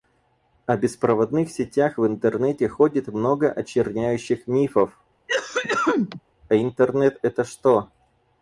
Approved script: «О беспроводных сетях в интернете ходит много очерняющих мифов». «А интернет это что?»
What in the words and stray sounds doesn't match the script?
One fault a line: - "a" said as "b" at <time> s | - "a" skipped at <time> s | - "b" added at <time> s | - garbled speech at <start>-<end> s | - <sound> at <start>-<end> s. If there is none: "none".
- cough at 5.3-6.2 s